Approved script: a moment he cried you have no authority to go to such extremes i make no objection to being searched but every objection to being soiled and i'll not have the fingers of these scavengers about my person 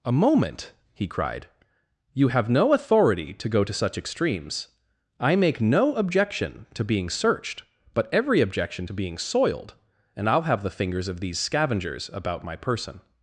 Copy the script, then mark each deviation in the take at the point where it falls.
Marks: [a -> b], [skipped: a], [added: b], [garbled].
a moment he cried you have no authority to go to such extremes i make no objection to being searched but every objection to being soiled and i'll [skipped: not] have the fingers of these scavengers about my person